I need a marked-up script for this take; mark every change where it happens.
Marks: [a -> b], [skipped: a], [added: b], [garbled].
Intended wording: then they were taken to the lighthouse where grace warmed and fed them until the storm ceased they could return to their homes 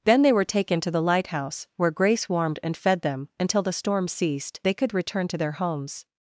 then they were taken to the lighthouse where grace warmed and fed them until the storm ceased they could return to their homes